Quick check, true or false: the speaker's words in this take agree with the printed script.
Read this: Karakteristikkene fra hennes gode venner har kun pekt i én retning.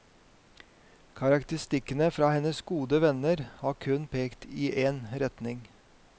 true